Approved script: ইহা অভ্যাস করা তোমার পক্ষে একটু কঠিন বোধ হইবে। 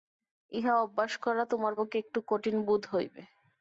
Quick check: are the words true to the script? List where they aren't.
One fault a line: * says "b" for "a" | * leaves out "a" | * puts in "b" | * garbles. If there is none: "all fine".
all fine